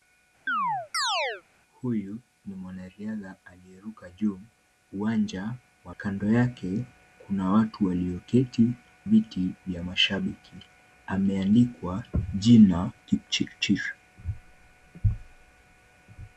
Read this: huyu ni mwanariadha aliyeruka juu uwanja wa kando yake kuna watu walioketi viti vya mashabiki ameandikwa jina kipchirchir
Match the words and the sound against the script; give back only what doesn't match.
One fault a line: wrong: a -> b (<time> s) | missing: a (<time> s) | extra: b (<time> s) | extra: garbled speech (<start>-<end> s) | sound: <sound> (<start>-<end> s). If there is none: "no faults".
sound: chirp (0.5-1.4 s)